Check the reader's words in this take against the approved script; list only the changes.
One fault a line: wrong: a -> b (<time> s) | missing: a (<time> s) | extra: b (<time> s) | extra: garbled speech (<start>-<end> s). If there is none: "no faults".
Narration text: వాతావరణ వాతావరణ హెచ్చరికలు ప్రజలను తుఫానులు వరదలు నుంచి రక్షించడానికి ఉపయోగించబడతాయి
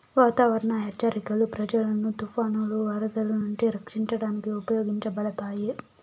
missing: వాతావరణ (0.7 s)